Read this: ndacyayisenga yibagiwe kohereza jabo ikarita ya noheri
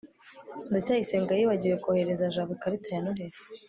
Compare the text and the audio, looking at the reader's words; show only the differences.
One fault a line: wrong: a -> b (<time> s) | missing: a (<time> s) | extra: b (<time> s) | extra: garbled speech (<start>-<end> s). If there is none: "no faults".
no faults